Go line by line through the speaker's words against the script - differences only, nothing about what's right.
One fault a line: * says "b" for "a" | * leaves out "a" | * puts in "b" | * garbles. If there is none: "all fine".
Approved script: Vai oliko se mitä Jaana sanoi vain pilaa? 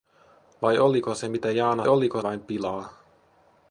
* says "oliko" for "sanoi"